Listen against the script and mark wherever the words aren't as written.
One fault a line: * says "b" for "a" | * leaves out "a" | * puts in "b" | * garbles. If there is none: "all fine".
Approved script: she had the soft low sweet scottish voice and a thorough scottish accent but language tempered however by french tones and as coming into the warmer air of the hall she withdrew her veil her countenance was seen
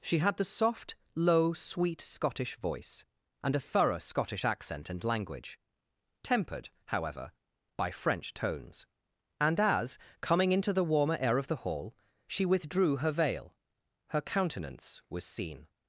* says "and" for "but"